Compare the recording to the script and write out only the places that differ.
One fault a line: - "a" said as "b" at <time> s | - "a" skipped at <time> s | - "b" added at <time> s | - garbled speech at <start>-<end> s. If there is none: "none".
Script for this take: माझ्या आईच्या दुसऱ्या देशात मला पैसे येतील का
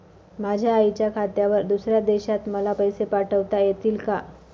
- "खात्यावर" added at 1.1 s
- "पाठविता" added at 3.0 s